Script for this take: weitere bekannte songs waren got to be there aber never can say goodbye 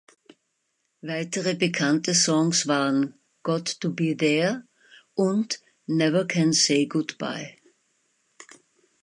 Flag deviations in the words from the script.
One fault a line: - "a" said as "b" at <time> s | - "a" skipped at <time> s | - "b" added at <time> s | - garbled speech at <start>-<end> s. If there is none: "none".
- "aber" said as "und" at 5.1 s